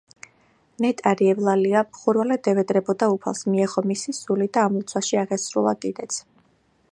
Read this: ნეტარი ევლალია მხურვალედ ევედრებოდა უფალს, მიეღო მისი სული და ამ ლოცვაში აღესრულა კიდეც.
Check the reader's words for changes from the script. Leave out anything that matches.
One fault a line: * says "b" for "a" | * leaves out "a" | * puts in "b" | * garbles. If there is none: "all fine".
all fine